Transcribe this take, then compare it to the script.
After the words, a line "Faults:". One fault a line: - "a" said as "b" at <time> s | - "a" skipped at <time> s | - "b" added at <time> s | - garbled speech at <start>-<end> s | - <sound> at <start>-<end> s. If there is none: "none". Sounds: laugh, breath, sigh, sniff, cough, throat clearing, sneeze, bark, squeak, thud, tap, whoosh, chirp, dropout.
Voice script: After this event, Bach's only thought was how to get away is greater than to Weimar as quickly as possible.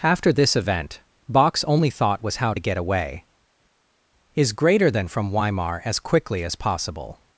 After this event, Bach's only thought was how to get away is greater than from Weimar as quickly as possible.
Faults:
- "to" said as "from" at 5.1 s